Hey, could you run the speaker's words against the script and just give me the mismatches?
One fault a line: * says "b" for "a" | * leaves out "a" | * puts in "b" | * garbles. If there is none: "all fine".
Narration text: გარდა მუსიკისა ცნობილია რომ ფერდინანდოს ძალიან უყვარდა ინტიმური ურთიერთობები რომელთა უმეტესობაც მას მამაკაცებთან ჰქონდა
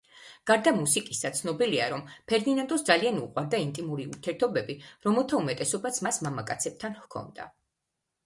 all fine